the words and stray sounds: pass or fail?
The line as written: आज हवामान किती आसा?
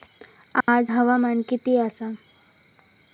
fail